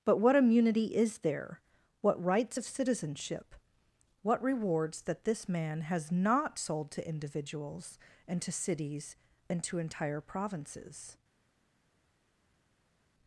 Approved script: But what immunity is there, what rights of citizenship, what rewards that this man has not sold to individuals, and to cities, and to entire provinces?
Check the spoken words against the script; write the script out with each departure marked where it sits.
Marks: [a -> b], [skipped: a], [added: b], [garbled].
But what immunity is there, what rights of citizenship, what rewards that this man has not sold to individuals, and to cities, and to entire provinces?